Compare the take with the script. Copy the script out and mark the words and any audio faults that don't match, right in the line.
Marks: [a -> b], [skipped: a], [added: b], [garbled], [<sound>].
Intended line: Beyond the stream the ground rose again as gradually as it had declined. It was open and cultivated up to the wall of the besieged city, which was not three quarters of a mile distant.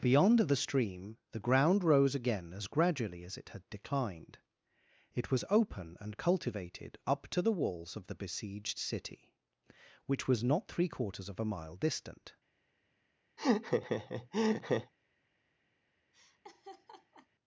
Beyond the stream the ground rose again as gradually as it had declined. It was open and cultivated up to the [wall -> walls] of the besieged city, which was not three quarters of a mile distant. [laugh] [laugh]